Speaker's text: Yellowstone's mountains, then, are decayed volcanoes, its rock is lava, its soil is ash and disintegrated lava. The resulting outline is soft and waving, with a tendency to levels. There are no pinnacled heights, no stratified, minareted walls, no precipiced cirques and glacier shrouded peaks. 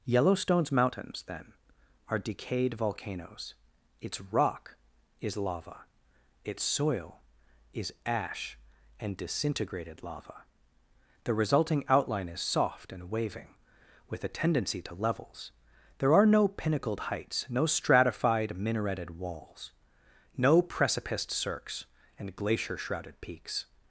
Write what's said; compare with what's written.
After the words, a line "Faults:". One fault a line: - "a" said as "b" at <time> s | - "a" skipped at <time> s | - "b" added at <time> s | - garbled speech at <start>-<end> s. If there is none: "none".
Yellowstone's mountains, then, are decayed volcanoes, its rock is lava, its soil is ash and disintegrated lava. The resulting outline is soft and waving, with a tendency to levels. There are no pinnacled heights, no stratified, minareted walls, no precipiced cirques and glacier shrouded peaks.
Faults:
none